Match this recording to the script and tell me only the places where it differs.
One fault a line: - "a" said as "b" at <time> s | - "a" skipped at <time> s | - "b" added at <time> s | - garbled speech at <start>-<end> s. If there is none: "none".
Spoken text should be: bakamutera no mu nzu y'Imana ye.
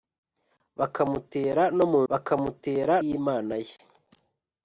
- "nzu" said as "bakamutera" at 2.1 s